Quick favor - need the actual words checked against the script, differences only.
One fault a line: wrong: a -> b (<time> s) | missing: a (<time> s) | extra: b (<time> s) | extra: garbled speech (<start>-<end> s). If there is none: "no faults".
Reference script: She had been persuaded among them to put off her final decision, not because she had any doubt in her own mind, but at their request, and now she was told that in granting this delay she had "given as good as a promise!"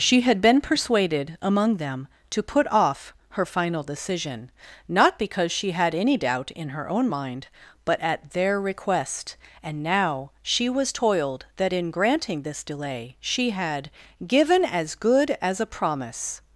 wrong: told -> toiled (10.9 s)